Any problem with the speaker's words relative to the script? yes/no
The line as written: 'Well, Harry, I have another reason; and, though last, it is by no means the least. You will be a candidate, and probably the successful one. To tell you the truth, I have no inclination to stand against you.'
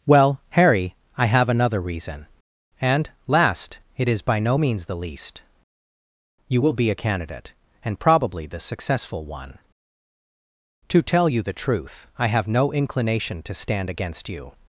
yes